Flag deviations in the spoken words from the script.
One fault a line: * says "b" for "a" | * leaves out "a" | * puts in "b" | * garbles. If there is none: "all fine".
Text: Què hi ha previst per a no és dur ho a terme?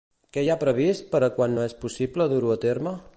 * puts in "quan"
* puts in "possible"